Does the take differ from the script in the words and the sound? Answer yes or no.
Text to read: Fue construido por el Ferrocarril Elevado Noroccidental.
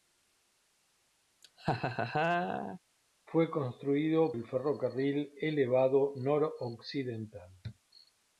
yes